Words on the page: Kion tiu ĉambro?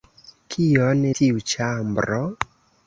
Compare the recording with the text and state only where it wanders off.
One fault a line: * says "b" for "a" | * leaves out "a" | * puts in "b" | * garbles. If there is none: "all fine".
all fine